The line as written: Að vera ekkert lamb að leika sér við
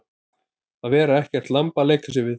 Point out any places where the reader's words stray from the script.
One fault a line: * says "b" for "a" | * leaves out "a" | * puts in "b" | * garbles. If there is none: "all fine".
all fine